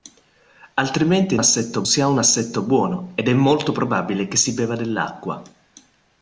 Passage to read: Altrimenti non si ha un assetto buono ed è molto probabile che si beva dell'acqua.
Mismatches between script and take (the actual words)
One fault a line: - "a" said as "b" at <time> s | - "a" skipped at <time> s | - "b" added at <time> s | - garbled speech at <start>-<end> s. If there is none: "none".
- "non" said as "assetto" at 1.4 s